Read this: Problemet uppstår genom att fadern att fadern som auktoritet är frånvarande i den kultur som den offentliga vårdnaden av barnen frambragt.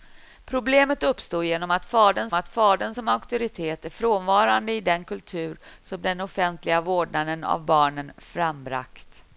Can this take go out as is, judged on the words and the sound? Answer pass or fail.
pass